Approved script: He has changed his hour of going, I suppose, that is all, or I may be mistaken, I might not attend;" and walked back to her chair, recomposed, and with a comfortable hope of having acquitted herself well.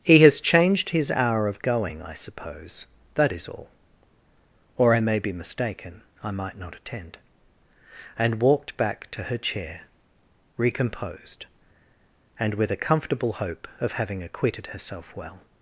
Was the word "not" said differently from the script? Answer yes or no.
no